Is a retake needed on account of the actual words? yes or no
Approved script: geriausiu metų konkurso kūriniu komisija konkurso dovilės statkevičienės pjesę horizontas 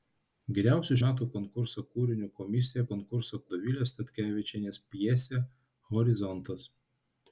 no